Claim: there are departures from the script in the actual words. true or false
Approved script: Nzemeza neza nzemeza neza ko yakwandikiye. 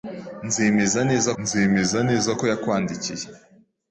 false